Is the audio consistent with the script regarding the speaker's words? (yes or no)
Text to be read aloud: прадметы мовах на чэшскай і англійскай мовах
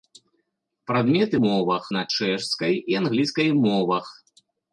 yes